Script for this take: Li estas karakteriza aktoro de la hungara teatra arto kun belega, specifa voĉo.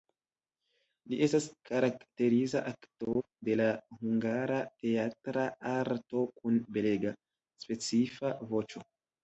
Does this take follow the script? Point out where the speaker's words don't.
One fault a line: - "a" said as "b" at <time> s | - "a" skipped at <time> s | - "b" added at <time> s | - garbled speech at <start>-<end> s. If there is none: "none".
none